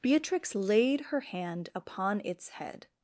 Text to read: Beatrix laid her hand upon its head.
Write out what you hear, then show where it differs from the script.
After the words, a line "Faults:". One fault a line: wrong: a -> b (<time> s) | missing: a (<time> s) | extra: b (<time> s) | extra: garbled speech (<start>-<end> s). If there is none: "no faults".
Beatrix laid her hand upon its head.
Faults:
no faults